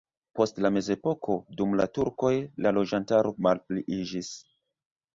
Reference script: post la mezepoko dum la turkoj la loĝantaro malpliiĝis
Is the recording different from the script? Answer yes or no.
no